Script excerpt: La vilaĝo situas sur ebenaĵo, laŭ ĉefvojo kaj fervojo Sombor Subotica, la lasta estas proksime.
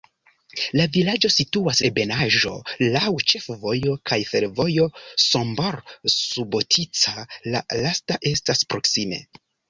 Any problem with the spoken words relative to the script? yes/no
yes